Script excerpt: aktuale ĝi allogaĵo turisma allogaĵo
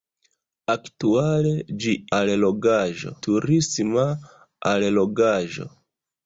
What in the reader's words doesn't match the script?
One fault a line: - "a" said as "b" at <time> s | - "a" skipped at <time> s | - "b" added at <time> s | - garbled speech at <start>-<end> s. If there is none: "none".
none